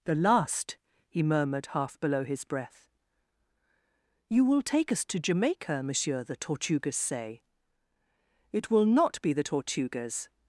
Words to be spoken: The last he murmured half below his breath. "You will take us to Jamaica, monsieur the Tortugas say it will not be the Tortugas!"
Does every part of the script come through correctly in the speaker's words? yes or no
yes